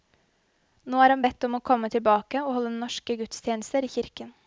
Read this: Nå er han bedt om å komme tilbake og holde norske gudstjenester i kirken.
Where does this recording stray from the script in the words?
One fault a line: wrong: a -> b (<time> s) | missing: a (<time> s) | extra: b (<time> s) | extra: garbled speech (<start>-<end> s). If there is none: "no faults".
no faults